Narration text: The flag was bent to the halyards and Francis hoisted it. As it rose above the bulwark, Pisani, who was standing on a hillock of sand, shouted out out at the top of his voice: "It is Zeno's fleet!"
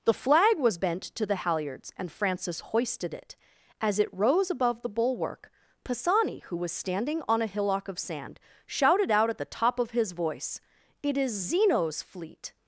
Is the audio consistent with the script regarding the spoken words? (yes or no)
no